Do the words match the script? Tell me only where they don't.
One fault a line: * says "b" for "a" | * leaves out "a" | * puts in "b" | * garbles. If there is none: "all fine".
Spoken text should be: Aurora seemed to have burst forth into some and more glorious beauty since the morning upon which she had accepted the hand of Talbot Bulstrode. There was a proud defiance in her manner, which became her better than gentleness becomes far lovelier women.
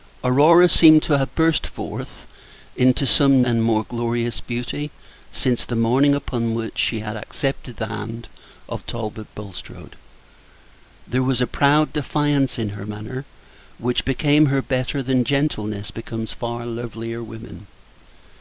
all fine